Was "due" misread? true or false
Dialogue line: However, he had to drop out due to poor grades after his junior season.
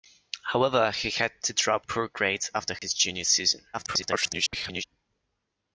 true